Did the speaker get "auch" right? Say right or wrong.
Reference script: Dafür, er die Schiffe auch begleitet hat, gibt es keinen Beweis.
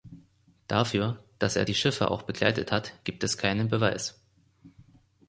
right